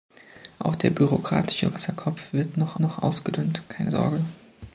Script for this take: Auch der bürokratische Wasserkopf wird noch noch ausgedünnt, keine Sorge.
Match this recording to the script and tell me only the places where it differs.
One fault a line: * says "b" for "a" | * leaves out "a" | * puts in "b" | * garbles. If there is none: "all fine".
all fine